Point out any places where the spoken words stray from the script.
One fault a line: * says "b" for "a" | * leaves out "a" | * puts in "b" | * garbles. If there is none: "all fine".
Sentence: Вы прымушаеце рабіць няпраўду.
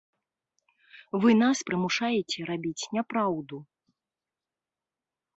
* puts in "нас"